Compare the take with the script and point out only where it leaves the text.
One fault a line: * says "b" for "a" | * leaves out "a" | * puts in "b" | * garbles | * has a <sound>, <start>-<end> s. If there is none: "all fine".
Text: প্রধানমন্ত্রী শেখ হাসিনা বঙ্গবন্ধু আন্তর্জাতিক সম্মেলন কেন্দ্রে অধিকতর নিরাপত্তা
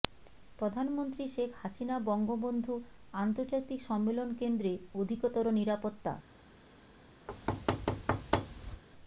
* has a thud, 7.3-8.8 s